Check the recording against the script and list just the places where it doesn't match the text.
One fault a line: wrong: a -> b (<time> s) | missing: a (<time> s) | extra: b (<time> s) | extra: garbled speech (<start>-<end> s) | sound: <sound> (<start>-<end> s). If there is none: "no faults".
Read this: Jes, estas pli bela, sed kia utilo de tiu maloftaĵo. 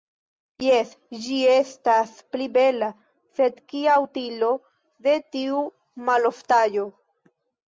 extra: ĝi (1.2 s)